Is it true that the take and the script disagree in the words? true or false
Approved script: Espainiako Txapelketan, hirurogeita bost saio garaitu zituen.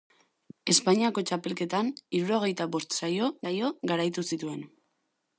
true